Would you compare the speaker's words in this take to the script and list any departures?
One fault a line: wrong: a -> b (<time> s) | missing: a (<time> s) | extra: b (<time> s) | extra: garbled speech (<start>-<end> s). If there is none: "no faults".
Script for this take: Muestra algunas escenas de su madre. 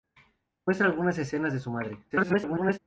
extra: garbled speech (2.1-2.8 s)